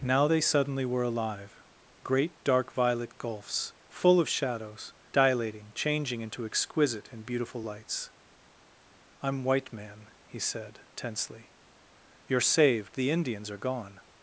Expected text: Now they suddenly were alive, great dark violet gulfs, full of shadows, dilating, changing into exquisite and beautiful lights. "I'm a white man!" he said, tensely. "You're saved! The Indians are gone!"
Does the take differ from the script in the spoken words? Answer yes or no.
yes